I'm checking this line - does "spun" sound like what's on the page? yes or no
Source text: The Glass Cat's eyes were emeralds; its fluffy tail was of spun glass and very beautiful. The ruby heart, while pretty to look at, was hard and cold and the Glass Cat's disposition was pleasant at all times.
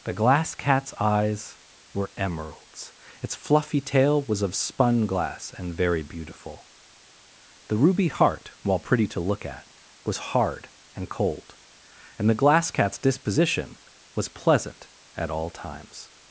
yes